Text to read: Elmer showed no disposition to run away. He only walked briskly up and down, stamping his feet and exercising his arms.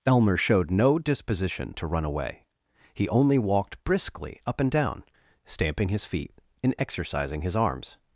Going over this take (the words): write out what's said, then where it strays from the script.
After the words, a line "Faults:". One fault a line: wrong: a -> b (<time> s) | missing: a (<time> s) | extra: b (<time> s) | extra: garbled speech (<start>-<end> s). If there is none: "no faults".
Elmer showed no disposition to run away. He only walked briskly up and down, stamping his feet and exercising his arms.
Faults:
no faults